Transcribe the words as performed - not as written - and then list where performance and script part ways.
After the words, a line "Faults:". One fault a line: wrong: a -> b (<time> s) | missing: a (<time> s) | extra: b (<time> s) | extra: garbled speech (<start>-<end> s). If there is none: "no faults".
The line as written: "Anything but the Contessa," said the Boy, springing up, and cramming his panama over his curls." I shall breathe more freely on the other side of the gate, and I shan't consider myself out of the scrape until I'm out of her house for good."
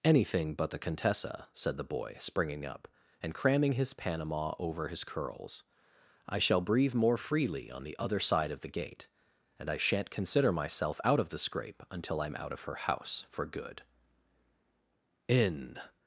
"Anything but the Contessa," said the Boy, springing up, and cramming his panama over his curls." I shall breathe more freely on the other side of the gate, and I shan't consider myself out of the scrape until I'm out of her house for good." In
Faults:
extra: In (15.3 s)